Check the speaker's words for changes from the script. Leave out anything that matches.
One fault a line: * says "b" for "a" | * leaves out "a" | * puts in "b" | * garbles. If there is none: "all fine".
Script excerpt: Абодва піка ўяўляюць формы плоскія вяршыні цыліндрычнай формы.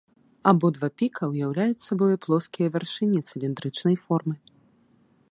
* says "сабою" for "формы"